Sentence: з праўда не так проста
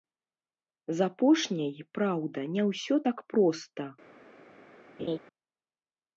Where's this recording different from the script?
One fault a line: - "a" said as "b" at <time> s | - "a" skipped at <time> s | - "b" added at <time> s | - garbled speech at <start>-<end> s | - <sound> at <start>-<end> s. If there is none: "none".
- "апошняй" added at 1.1 s
- "ўсё" added at 2.7 s
- laugh at 5.0-5.2 s